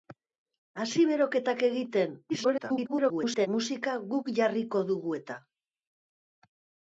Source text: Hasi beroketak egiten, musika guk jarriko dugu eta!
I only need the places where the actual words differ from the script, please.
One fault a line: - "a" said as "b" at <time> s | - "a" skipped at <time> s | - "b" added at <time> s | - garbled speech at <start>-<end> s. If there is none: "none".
- garbled speech at 2.3-3.5 s